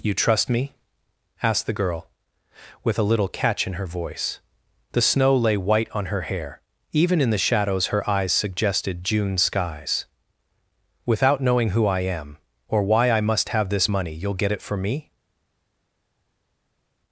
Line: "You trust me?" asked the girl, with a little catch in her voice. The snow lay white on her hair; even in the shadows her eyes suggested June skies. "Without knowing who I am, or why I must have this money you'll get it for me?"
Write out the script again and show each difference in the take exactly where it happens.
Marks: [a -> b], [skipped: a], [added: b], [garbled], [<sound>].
"You trust me?" asked the girl, with a little catch in her voice. The snow lay white on her hair; even in the shadows her eyes suggested June skies. "Without knowing who I am, or why I must have this money you'll get it for me?"